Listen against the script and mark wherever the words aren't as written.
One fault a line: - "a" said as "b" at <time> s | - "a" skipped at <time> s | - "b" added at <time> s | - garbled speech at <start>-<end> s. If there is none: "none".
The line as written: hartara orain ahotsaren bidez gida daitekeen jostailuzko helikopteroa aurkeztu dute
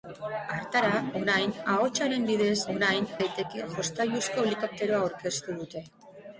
- "gida" said as "orain" at 2.7 s